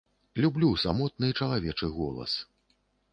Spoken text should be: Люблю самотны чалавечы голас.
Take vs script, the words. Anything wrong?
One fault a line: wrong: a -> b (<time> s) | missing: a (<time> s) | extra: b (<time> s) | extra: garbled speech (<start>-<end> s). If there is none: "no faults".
no faults